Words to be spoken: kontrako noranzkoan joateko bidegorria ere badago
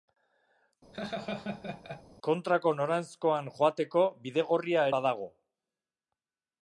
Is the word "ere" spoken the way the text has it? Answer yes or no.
no